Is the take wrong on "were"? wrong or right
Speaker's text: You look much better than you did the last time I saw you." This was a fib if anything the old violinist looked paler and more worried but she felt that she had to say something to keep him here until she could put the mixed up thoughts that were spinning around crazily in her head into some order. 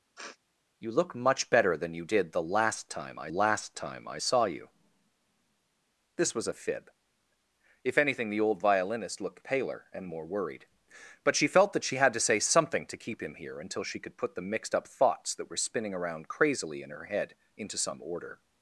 right